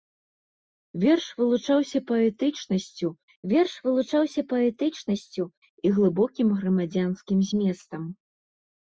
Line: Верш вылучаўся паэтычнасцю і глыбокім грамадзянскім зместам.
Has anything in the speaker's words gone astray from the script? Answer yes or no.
yes